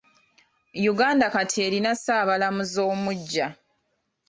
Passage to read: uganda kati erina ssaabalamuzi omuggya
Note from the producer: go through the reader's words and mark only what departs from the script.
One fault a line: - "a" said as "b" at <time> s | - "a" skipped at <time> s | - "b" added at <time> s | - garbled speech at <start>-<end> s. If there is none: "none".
none